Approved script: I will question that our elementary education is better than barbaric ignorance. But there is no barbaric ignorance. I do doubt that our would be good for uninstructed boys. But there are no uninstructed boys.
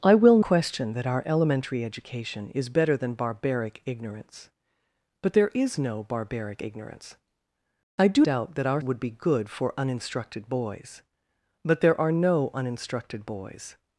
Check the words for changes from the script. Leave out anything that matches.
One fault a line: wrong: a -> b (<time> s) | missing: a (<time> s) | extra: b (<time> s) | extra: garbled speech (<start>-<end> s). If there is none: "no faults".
no faults